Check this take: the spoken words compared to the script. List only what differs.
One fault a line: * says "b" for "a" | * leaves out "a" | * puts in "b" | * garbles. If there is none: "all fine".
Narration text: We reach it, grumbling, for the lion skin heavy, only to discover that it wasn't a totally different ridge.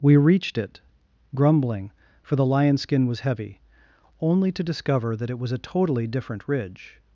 * says "reached" for "reach"
* puts in "was"
* says "was" for "wasn't"